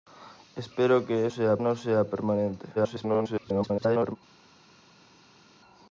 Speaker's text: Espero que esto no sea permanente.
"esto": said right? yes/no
no